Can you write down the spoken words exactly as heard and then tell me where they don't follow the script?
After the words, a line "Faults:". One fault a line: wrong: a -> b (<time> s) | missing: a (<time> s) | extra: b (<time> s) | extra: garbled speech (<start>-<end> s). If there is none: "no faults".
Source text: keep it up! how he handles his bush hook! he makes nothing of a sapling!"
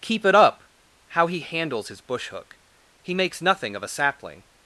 keep it up! how he handles his bush hook! he makes nothing of a sapling!"
Faults:
no faults